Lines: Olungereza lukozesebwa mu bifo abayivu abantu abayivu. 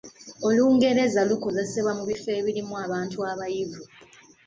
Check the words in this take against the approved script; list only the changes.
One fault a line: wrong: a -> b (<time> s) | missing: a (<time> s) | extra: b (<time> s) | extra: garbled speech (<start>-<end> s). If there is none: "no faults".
wrong: abayivu -> ebirimu (2.4 s)